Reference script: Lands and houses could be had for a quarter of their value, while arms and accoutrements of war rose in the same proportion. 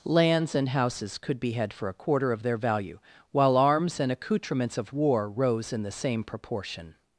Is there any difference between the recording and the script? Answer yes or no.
no